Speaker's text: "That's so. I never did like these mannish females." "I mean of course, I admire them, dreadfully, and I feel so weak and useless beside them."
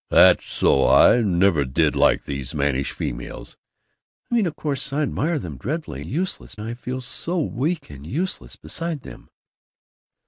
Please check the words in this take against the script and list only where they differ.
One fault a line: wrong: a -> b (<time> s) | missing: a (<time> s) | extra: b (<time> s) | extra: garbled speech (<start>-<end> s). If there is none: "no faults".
wrong: and -> useless (6.0 s)